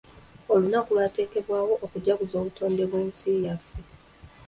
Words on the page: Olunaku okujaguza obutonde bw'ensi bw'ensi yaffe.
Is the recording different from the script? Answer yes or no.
yes